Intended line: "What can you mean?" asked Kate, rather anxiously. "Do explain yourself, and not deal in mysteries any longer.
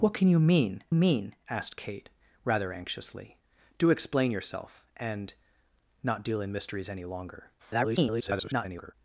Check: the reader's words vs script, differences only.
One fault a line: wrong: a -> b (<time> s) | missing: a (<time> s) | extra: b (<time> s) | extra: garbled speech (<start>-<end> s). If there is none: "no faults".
extra: mean (0.9 s)
extra: garbled speech (7.6-8.9 s)